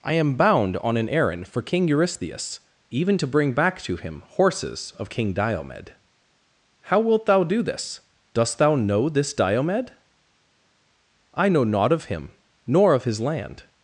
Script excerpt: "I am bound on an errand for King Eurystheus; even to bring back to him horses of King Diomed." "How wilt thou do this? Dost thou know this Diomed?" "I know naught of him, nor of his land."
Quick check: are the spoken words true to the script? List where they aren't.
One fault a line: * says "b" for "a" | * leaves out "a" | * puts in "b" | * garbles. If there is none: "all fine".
all fine